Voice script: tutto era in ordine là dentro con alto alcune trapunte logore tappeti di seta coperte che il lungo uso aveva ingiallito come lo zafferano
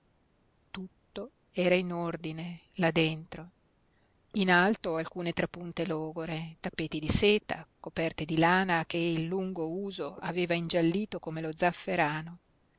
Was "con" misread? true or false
true